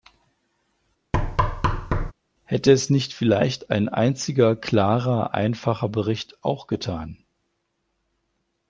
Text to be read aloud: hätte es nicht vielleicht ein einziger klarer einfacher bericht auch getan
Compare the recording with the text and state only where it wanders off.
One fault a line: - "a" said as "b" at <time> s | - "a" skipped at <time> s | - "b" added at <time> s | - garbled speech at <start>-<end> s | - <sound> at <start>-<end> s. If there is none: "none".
- thud at 1.1-2.1 s